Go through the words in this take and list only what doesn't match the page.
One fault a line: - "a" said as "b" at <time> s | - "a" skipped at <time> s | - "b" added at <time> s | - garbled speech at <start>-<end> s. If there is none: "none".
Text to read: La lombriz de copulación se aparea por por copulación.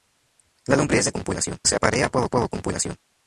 none